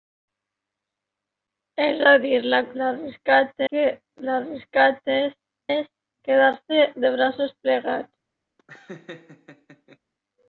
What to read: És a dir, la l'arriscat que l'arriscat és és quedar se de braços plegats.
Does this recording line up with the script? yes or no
yes